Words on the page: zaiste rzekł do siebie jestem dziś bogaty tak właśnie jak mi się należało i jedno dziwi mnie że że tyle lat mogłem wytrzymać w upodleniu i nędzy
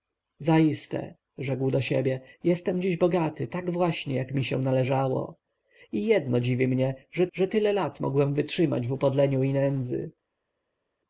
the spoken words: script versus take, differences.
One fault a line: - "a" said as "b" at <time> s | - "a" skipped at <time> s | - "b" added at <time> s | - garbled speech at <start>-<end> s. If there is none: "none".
none